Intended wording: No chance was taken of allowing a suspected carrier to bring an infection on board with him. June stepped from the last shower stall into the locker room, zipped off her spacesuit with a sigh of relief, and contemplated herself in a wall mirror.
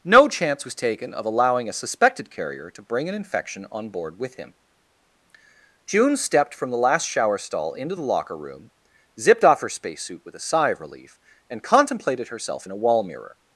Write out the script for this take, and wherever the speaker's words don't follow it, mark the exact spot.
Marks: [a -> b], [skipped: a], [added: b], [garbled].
No chance was taken of allowing a suspected carrier to bring an infection on board with him. June stepped from the last shower stall into the locker room, zipped off her spacesuit with a sigh of relief, and contemplated herself in a wall mirror.